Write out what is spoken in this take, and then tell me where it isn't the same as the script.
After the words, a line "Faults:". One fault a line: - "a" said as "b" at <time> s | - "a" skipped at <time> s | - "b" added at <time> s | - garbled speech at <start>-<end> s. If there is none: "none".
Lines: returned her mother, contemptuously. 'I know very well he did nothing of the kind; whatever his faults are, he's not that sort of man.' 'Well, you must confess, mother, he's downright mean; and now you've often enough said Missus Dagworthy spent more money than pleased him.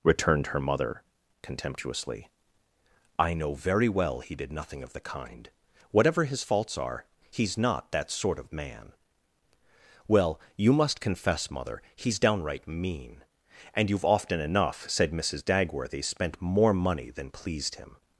returned her mother, contemptuously. 'I know very well he did nothing of the kind; whatever his faults are, he's not that sort of man.' 'Well, you must confess, mother, he's downright mean; and you've often enough said Missus Dagworthy spent more money than pleased him.
Faults:
- "now" skipped at 13.9 s